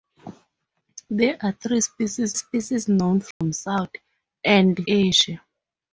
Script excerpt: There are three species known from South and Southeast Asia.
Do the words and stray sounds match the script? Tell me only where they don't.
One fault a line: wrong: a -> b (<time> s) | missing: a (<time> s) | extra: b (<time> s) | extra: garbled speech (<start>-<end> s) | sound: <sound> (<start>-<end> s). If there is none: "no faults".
extra: species (2.3 s)
sound: dropout (3.3-3.4 s)
missing: Southeast (4.8 s)